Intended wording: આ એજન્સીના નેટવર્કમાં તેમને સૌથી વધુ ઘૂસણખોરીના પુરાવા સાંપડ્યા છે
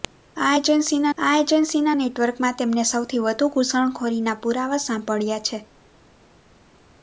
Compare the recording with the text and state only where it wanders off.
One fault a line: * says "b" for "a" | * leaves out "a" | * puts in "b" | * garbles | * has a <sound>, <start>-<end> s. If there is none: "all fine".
* puts in "આ એજન્સીના"